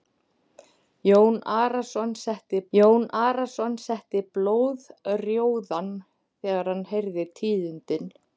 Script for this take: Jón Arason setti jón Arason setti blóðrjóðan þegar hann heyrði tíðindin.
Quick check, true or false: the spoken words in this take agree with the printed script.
true